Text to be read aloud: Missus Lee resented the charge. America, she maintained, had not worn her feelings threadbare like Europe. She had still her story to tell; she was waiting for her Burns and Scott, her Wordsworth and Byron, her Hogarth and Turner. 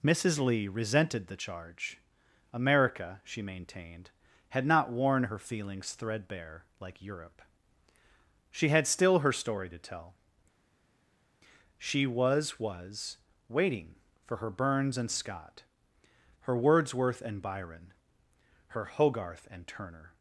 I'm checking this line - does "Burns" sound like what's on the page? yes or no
yes